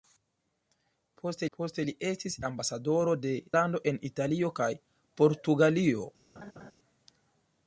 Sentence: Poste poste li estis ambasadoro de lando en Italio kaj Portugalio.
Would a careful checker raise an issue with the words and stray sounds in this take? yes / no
yes